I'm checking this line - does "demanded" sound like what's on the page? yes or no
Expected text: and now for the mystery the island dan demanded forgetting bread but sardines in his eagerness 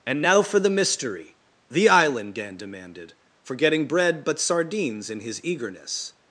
yes